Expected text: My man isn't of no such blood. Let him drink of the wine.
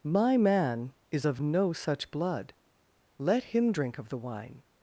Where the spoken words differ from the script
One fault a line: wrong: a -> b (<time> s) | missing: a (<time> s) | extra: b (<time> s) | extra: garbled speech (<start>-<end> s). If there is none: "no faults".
wrong: isn't -> is (1.1 s)